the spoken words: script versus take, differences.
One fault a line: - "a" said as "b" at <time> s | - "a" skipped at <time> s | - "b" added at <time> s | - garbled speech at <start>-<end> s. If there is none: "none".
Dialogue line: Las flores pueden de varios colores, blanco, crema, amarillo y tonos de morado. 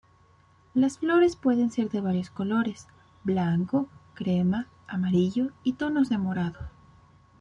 - "ser" added at 1.7 s